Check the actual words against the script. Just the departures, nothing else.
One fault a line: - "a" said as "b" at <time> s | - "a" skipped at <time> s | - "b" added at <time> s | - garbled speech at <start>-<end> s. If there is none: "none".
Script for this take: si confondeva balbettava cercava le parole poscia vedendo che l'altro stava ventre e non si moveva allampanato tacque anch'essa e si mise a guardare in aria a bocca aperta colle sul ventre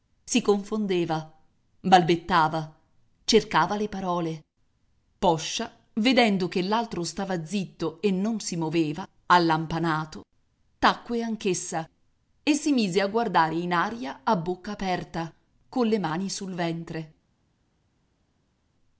- "ventre" said as "zitto" at 7.5 s
- "mani" added at 16.0 s